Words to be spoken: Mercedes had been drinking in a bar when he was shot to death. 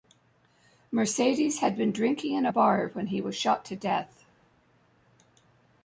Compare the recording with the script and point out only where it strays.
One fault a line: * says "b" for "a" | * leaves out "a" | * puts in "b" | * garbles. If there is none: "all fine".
all fine